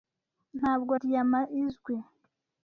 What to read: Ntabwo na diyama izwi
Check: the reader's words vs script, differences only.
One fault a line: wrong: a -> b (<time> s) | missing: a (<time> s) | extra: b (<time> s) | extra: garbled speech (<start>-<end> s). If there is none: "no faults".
missing: na (0.9 s)